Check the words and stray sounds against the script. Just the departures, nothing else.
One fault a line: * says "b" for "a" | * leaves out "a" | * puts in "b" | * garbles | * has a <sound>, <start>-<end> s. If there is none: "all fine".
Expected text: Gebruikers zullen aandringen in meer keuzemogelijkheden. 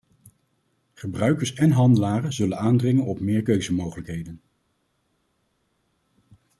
* puts in "en handelaren"
* says "op" for "in"